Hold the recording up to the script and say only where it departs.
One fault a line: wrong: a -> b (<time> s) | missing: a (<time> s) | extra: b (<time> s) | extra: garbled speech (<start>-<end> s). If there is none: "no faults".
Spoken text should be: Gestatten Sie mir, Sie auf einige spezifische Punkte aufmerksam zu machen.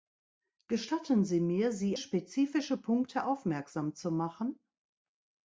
missing: auf einige (2.0 s)